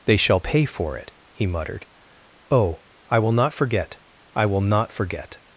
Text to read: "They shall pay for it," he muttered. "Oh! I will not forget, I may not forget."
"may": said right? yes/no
no